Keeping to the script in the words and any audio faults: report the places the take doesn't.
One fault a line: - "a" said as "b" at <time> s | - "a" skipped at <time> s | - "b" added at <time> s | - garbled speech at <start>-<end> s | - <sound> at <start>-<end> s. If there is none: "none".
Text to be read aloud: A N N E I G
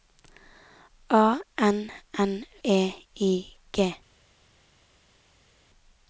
none